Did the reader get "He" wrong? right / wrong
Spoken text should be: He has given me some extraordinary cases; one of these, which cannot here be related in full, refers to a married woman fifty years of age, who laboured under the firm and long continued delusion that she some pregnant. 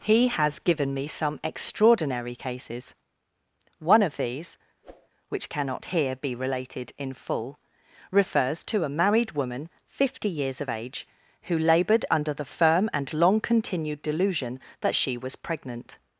right